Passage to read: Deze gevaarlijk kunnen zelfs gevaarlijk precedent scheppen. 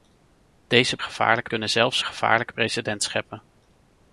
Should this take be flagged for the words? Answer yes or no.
no